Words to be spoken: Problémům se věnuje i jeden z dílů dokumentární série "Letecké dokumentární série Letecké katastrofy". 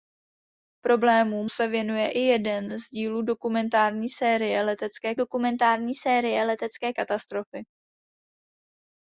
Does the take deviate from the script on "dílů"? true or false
false